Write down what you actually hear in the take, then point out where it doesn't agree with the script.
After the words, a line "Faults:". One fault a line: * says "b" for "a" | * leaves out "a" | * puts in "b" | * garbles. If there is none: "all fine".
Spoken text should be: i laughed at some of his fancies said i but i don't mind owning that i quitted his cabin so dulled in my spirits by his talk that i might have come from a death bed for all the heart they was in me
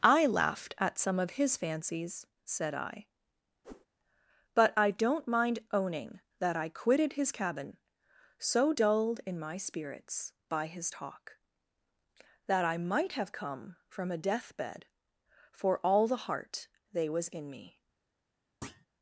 i laughed at some of his fancies said i but i don't mind owning that i quitted his cabin so dulled in my spirits by his talk that i might have come from a death bed for all the heart they was in me
Faults:
all fine